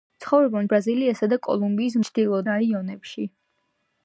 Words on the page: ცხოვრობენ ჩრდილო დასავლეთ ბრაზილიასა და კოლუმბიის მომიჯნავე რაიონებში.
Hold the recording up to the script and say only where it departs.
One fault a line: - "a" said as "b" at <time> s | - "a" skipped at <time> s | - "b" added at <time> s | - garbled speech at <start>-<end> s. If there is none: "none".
- "ჩრდილო დასავლეთ" skipped at 0.7 s
- "მომიჯნავე" said as "ჩრდილო" at 2.1 s